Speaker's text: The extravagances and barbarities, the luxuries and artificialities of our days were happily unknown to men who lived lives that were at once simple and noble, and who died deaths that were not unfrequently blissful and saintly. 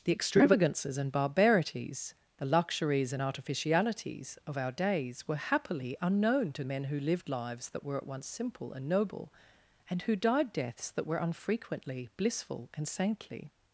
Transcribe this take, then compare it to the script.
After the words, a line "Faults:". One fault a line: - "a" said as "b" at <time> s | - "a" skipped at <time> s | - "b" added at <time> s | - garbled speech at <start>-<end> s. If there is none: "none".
The extravagances and barbarities, the luxuries and artificialities of our days were happily unknown to men who lived lives that were at once simple and noble, and who died deaths that were unfrequently blissful and saintly.
Faults:
- "not" skipped at 11.2 s